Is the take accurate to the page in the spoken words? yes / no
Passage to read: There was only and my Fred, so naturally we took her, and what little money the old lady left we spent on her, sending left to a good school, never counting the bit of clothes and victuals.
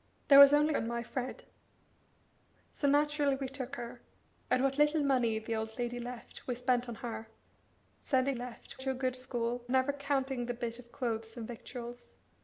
yes